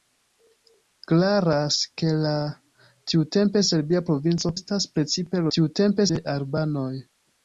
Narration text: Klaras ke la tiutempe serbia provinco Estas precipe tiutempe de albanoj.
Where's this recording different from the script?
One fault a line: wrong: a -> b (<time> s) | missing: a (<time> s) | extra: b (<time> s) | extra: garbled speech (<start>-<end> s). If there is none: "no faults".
no faults